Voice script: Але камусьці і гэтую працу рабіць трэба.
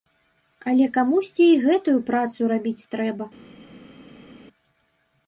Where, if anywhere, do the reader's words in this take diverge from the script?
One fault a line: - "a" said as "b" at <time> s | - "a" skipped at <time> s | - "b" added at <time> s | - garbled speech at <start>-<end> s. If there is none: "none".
none